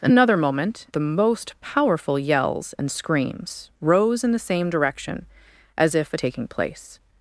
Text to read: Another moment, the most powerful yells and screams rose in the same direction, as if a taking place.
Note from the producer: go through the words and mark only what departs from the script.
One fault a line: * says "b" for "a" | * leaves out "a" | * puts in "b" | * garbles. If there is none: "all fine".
all fine